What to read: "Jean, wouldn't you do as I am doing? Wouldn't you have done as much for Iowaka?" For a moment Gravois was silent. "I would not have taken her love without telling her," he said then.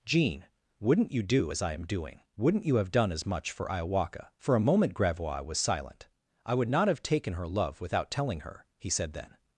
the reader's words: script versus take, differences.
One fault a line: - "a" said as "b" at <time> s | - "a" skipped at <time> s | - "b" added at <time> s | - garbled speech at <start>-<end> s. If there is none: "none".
none